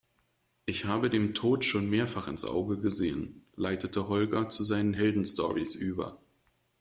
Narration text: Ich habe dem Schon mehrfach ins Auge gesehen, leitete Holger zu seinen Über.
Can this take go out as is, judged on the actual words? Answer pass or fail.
fail